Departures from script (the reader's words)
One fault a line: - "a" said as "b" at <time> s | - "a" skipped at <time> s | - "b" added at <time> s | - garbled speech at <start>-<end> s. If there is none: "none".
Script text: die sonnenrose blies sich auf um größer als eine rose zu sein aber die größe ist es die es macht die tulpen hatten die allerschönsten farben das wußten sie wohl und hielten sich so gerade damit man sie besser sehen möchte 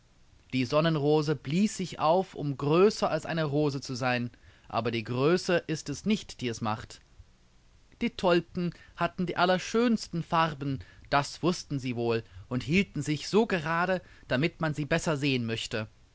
- "nicht" added at 6.1 s